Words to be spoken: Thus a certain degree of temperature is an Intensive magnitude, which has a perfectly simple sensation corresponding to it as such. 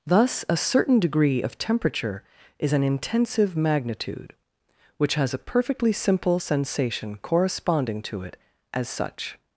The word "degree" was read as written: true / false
true